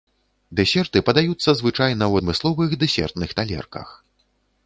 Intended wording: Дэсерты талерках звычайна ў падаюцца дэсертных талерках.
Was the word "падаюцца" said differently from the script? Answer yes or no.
yes